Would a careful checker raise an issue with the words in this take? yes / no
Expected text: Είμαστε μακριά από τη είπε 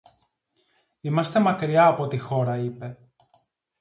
yes